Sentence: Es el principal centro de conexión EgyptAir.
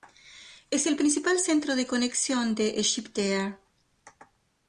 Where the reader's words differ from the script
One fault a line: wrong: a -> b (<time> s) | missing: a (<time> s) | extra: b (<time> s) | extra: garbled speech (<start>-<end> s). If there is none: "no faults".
extra: de (2.5 s)